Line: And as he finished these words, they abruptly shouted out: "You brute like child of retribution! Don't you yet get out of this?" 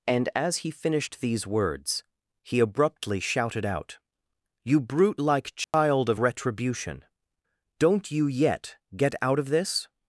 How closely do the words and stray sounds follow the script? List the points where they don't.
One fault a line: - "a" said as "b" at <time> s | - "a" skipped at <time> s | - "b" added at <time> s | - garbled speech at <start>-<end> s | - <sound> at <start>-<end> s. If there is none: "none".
- "they" said as "he" at 2.4 s
- dropout at 5.6-5.7 s